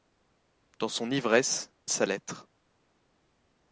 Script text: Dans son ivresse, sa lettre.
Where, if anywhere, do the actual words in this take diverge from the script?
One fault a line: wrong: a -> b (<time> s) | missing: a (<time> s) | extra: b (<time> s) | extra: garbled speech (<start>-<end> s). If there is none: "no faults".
no faults